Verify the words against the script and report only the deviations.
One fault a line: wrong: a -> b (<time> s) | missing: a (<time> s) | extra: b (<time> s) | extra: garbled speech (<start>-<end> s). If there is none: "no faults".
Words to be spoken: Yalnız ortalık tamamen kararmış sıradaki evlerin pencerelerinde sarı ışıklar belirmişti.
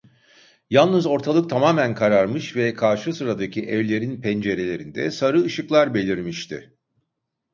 extra: ve karşı (2.6 s)